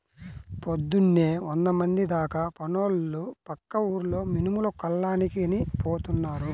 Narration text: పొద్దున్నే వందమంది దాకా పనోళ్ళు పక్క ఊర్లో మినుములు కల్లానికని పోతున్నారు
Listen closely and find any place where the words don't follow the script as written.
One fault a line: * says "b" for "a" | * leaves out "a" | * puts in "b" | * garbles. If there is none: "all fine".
all fine